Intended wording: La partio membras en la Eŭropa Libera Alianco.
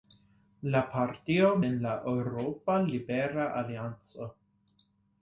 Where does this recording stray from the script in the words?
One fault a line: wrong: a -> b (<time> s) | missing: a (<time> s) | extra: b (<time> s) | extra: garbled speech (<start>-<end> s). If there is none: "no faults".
missing: membras (1.5 s)